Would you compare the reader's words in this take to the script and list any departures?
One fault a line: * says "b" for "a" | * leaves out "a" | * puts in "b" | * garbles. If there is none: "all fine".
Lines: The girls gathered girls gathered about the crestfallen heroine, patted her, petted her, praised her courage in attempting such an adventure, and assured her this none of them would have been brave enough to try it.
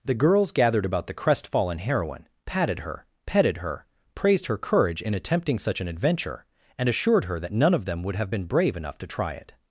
* leaves out "girls gathered"
* says "that" for "this"